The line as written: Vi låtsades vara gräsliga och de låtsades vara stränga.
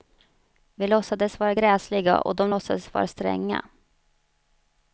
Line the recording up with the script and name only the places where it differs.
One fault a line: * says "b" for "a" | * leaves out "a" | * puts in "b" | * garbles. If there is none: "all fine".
all fine